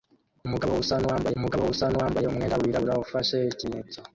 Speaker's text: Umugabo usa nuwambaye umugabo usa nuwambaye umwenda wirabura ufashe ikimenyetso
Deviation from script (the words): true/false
false